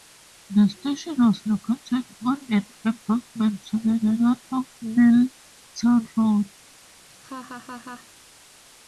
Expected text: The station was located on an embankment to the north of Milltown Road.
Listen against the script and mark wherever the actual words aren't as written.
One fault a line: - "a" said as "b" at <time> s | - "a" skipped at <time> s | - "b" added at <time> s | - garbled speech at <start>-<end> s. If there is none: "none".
- "the" added at 3.9 s